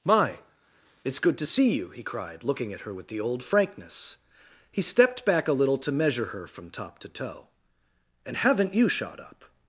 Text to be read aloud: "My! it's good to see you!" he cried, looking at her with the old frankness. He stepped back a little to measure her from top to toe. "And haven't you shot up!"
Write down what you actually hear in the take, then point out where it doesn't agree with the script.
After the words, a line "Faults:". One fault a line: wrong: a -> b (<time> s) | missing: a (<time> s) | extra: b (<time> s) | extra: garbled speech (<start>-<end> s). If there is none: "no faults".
"My! it's good to see you!" he cried, looking at her with the old frankness. He stepped back a little to measure her from top to toe. "And haven't you shot up!"
Faults:
no faults